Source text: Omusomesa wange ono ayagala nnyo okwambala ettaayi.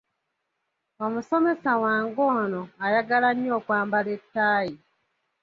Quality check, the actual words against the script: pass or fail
pass